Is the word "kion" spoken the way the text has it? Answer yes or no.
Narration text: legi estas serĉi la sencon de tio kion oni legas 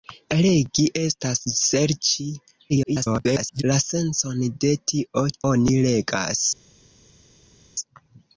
no